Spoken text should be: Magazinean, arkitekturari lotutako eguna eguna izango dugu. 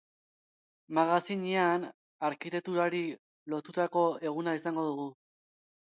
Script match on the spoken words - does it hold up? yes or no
no